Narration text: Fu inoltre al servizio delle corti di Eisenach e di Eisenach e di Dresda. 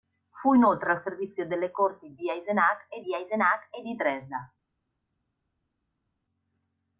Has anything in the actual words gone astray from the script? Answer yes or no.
no